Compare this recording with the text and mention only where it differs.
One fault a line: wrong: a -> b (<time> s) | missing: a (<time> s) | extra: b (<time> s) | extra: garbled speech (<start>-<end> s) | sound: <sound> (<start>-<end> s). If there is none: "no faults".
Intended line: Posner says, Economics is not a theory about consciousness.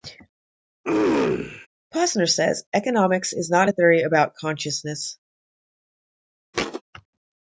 sound: throat clearing (0.8-1.7 s)
sound: thud (6.5-6.8 s)